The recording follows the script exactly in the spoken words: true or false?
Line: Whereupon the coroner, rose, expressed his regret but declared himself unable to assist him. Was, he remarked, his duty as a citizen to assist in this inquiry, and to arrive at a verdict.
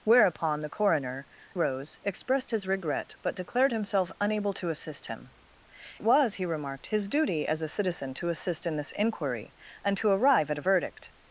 true